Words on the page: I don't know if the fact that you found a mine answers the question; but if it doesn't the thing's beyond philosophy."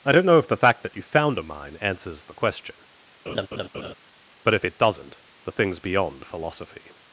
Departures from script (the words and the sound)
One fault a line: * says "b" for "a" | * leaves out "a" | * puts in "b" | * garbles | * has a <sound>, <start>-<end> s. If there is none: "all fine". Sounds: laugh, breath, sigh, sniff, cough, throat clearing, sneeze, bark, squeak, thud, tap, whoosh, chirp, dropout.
* has a laugh, 3.3-3.9 s